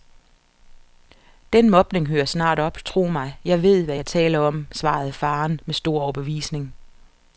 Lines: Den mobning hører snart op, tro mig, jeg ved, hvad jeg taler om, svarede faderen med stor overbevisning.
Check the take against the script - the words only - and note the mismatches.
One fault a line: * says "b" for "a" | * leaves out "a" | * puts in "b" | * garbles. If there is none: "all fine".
all fine